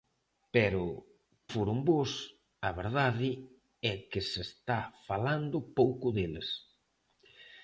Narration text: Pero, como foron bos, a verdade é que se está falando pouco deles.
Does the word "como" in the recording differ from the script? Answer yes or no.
yes